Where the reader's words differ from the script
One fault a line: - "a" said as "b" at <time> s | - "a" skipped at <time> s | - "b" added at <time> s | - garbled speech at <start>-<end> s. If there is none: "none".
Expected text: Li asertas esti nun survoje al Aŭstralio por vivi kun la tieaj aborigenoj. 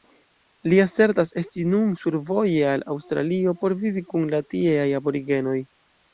none